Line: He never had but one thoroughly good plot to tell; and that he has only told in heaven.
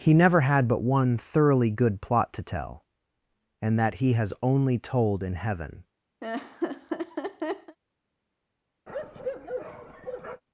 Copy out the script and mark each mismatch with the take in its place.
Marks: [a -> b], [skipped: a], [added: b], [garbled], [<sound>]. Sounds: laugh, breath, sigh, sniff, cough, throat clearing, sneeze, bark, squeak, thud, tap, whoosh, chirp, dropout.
He never had but one thoroughly good plot to tell; and that he has only told in heaven. [laugh] [bark]